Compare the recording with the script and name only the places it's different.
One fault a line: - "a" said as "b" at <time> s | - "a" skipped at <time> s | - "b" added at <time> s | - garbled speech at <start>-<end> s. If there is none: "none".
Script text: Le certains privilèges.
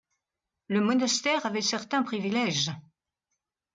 - "monastère avait" added at 0.8 s